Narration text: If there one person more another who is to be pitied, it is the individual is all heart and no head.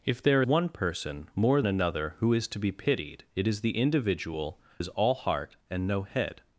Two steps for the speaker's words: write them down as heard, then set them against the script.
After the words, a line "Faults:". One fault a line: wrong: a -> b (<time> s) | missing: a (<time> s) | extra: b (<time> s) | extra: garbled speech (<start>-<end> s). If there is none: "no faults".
If there one person more another who is to be pitied, it is the individual is all heart and no head.
Faults:
no faults